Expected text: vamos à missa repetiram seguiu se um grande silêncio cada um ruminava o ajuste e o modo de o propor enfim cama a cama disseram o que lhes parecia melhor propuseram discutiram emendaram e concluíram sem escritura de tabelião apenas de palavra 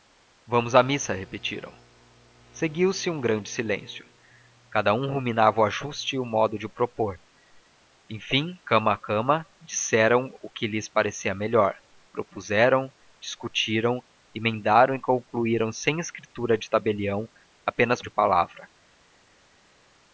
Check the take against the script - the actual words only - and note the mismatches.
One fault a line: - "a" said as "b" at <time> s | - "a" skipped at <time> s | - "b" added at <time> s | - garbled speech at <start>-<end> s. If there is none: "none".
none